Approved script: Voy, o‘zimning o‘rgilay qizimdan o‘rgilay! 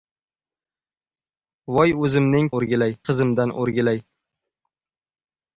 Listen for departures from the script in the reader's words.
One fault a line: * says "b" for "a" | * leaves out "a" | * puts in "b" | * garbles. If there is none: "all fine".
all fine